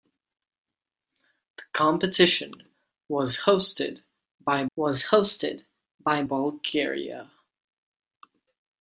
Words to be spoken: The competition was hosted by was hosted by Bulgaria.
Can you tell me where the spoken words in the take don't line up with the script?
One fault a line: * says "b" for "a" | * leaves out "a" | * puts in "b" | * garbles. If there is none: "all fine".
all fine